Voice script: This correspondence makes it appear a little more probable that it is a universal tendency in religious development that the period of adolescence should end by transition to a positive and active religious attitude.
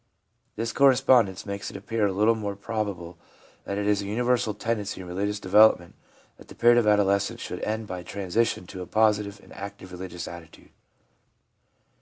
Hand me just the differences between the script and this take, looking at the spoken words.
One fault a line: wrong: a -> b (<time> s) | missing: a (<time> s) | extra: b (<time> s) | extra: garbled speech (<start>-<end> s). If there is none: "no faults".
no faults